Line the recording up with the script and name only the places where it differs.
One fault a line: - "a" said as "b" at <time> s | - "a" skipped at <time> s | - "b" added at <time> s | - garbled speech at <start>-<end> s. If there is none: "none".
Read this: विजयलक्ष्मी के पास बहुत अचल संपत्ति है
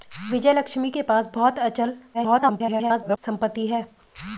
- garbled speech at 2.1-3.2 s